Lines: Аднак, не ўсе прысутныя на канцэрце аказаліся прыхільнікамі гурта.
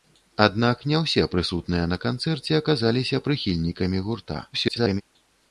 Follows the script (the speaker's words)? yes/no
no